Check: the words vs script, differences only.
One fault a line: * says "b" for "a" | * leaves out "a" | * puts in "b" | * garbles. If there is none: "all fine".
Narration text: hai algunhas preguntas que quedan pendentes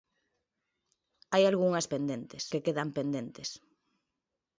* says "pendentes" for "preguntas"